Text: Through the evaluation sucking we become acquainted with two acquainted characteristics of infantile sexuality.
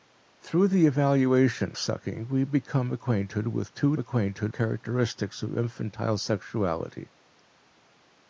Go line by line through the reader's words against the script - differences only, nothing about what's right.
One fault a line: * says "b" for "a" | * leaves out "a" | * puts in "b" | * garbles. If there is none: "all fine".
all fine